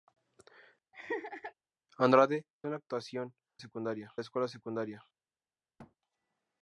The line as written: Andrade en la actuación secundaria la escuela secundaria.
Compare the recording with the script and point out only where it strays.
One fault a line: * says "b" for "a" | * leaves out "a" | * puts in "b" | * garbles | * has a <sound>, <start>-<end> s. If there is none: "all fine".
* has a laugh, 0.9-1.5 s
* has a thud, 5.8-6.0 s